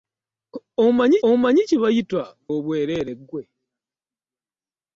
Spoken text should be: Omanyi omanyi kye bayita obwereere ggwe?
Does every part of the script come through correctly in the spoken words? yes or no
yes